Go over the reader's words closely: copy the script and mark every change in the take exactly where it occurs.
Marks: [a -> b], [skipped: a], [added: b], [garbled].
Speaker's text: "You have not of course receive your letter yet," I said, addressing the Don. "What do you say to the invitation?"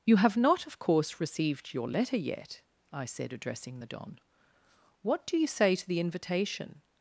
"You have not of course [receive -> received] your letter yet," I said, addressing the Don. "What do you say to the invitation?"